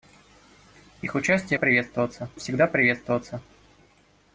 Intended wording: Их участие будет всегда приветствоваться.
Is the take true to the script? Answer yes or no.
no